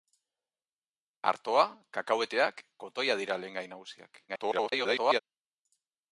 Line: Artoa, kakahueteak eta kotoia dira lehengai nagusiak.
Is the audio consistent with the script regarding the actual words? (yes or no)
no